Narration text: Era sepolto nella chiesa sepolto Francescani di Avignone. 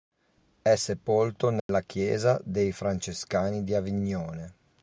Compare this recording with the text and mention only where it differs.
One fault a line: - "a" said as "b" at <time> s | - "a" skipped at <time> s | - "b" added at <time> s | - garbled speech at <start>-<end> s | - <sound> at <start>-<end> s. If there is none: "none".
- "Era" said as "È" at 0.6 s
- dropout at 1.6-1.7 s
- "sepolto" said as "dei" at 2.4 s